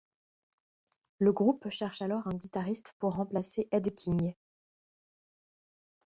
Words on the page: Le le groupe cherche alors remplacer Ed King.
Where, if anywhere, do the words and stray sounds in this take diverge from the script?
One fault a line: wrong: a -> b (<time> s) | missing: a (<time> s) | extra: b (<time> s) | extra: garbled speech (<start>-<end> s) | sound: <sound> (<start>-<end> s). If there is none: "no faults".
missing: le (1.3 s)
extra: un guitariste pour (2.3 s)